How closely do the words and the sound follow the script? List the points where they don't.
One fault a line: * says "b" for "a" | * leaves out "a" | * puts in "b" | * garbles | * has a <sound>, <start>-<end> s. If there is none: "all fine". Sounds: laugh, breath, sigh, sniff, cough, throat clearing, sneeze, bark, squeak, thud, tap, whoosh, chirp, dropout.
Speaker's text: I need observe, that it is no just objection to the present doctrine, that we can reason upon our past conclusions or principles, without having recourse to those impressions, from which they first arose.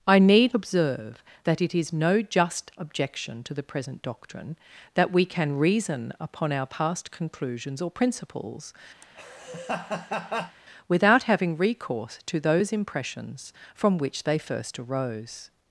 * has a laugh, 9.0-10.6 s